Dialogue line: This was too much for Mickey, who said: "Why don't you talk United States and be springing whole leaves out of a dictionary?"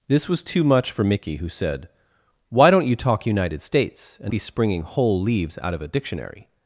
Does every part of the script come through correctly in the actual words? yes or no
yes